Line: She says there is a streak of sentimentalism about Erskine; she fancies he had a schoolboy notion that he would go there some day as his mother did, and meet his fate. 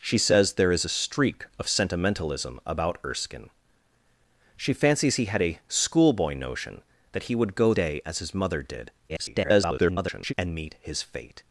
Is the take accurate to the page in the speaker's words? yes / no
no